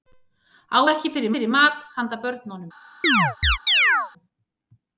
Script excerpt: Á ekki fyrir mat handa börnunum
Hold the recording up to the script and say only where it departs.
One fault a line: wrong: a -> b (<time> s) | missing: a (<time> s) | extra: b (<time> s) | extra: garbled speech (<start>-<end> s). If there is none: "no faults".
extra: fyrir (1.3 s)